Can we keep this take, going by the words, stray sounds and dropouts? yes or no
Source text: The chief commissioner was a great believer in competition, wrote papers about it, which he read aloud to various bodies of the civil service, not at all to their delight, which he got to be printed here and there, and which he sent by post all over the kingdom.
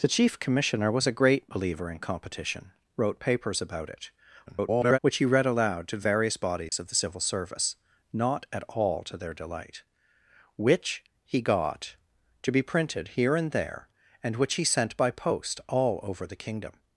no